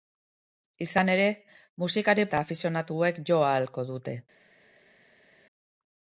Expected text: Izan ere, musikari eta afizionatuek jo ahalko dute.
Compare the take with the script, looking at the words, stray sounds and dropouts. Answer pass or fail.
pass